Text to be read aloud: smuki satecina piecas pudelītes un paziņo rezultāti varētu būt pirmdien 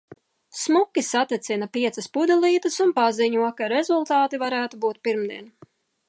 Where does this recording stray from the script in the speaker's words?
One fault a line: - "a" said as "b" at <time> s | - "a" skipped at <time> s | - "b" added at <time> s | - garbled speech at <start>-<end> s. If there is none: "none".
- "ka" added at 3.6 s